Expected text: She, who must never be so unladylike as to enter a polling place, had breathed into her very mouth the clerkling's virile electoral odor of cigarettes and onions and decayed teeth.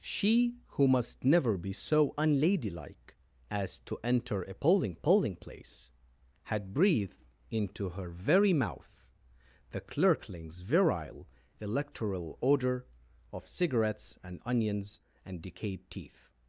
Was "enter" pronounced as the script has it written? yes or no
yes